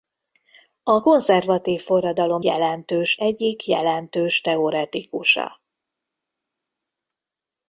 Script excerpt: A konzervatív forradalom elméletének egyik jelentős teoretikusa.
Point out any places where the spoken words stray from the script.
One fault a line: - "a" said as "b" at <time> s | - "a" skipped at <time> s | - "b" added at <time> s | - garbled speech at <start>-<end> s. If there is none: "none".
- "elméletének" said as "jelentős" at 2.4 s